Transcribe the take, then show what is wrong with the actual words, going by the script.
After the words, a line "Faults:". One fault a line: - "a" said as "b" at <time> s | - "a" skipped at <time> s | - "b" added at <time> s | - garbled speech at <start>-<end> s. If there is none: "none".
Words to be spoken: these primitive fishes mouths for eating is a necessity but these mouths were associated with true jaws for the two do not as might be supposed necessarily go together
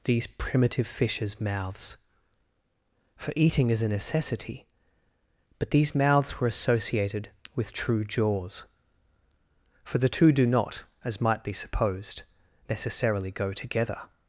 these primitive fishes mouths for eating is a necessity but these mouths were associated with true jaws for the two do not as might be supposed necessarily go together
Faults:
none